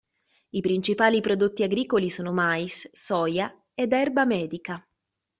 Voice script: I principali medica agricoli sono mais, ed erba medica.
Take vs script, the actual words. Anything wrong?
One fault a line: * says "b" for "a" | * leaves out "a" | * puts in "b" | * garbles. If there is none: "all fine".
* says "prodotti" for "medica"
* puts in "soia"